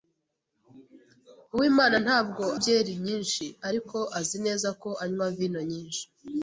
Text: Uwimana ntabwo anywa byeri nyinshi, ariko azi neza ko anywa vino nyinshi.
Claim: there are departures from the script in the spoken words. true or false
true